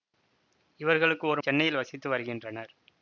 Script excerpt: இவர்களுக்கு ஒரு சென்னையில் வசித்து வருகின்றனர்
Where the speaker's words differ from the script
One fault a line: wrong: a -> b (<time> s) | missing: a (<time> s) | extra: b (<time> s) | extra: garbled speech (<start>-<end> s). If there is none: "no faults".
no faults